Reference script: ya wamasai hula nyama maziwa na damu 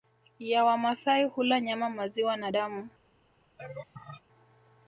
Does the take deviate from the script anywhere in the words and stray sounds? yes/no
yes